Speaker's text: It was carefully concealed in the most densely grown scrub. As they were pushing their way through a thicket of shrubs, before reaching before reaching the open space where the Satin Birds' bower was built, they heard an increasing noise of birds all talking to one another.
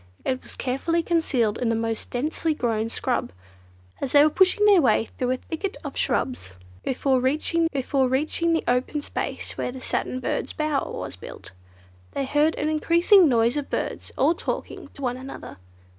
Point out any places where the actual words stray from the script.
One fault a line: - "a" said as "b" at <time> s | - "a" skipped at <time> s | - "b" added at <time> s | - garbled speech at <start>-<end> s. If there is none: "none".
none